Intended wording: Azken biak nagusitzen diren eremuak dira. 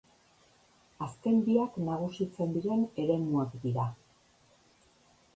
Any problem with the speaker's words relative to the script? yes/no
no